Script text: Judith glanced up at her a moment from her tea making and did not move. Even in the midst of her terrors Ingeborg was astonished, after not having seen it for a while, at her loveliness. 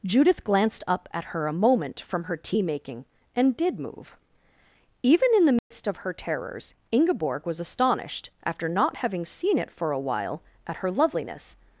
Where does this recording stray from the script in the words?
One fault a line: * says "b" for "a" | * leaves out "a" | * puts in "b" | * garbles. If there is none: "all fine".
* leaves out "not"